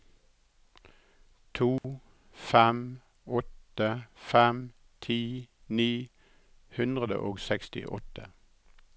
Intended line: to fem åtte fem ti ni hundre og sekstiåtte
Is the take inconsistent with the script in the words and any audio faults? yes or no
yes